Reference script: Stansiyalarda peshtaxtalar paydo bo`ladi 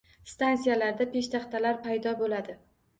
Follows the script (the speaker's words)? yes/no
yes